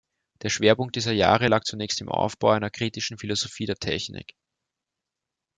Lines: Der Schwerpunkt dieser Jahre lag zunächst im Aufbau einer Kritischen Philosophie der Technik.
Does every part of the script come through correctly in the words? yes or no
yes